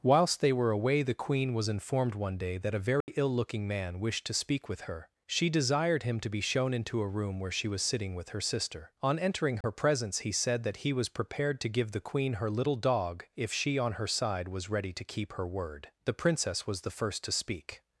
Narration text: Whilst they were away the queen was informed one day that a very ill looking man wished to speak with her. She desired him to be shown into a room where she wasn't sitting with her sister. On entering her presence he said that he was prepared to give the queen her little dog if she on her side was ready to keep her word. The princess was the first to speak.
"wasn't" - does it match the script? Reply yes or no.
no